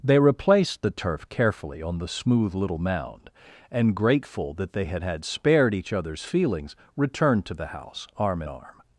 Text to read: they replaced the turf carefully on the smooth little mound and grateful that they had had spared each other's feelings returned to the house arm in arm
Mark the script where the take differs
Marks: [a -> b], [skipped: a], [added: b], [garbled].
they replaced the turf carefully on the smooth little mound and grateful that they had had spared each other's feelings returned to the house arm in arm